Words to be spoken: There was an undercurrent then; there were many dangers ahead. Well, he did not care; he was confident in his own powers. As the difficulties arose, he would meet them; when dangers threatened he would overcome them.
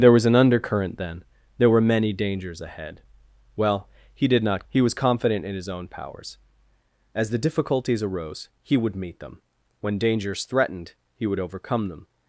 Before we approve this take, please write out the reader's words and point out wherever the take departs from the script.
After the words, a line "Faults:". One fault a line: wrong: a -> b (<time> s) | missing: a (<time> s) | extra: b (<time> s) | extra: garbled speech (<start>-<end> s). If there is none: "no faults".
There was an undercurrent then; there were many dangers ahead. Well, he did not; he was confident in his own powers. As the difficulties arose, he would meet them; when dangers threatened he would overcome them.
Faults:
missing: care (4.7 s)